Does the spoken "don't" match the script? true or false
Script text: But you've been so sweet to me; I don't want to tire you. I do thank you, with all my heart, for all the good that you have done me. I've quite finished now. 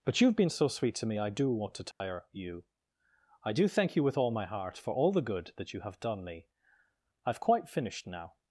false